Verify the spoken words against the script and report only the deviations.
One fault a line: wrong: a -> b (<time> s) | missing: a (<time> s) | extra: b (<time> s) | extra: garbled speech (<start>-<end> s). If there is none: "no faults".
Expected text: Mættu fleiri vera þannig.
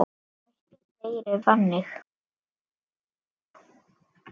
missing: vera (1.4 s)